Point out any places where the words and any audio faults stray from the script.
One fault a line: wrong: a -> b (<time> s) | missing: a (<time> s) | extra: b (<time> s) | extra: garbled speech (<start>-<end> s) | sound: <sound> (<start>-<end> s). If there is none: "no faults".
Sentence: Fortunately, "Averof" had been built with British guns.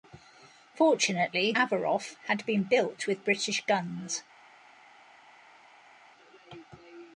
no faults